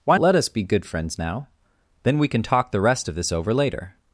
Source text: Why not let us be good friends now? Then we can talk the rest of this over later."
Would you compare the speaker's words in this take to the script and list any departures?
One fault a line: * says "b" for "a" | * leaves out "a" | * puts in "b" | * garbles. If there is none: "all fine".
* leaves out "not"